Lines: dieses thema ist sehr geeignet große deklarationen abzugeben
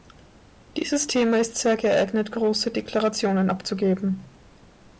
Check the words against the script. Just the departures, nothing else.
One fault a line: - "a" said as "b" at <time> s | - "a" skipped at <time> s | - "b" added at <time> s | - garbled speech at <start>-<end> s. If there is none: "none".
none